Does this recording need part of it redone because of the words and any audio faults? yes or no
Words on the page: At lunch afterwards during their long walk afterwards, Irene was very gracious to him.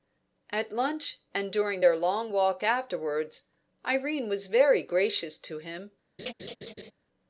yes